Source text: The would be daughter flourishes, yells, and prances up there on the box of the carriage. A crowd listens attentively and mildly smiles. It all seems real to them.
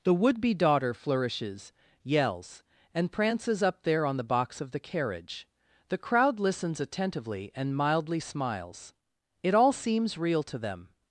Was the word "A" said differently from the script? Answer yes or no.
yes